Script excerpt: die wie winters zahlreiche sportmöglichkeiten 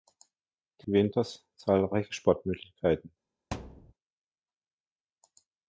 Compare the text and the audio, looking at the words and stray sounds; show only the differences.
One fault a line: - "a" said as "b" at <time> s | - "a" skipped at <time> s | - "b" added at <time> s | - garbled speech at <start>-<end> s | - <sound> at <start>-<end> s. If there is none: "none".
- thud at 3.5-3.9 s